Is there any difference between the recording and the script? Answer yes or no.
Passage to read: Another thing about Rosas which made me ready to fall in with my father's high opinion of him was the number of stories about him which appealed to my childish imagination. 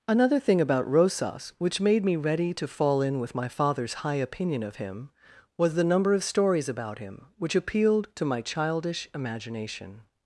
no